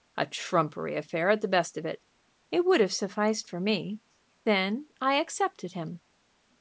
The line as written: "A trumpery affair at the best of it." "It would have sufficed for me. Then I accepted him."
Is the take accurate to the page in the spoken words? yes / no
yes